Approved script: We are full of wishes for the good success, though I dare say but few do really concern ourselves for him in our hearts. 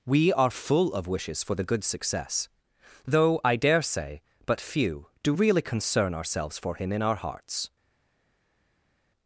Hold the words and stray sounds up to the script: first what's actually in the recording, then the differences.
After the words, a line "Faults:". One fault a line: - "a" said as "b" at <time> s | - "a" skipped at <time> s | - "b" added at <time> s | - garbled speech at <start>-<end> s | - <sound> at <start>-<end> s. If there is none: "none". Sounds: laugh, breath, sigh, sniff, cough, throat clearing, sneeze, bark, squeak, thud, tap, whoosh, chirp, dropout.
We are full of wishes for the good success, though I dare say but few do really concern ourselves for him in our hearts.
Faults:
none